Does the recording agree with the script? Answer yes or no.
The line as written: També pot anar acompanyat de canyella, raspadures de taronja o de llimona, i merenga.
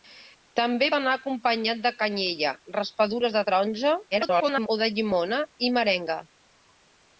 no